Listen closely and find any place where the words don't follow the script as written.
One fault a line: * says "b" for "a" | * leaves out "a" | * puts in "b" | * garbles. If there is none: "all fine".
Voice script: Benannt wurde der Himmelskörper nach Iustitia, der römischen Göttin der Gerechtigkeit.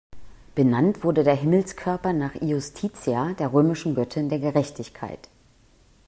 all fine